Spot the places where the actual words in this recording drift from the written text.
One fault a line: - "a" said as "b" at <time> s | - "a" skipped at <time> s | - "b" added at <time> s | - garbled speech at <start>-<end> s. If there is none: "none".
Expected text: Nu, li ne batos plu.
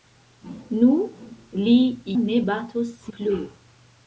none